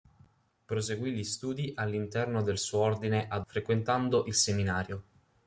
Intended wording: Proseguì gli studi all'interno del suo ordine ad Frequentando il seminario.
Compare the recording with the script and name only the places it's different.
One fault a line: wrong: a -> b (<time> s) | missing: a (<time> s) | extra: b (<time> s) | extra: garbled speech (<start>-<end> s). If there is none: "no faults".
no faults